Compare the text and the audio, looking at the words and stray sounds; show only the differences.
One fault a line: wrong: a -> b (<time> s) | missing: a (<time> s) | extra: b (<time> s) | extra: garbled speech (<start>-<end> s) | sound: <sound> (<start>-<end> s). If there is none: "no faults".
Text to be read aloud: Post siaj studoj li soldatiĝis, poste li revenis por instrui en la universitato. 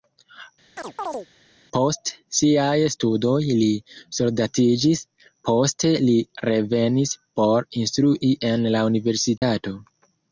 sound: chirp (0.8-1.3 s)
sound: dropout (9.4-9.4 s)